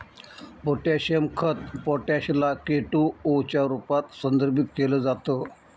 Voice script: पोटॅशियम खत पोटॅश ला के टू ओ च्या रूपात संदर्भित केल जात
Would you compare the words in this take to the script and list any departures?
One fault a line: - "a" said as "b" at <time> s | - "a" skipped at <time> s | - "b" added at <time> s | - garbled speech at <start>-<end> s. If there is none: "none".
none